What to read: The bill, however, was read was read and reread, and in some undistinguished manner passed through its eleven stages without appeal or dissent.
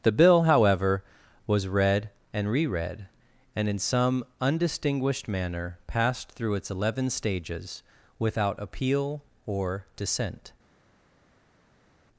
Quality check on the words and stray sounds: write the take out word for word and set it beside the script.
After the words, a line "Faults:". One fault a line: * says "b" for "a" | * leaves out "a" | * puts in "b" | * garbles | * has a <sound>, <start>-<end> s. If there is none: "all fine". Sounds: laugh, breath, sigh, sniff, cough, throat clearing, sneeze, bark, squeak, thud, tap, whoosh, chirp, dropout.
The bill, however, was read and reread, and in some undistinguished manner passed through its eleven stages without appeal or dissent.
Faults:
* leaves out "was read"